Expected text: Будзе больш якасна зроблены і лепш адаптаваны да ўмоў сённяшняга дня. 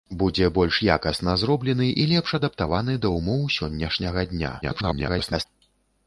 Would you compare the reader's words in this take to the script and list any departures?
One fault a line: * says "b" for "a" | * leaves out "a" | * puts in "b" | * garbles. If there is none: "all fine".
* garbles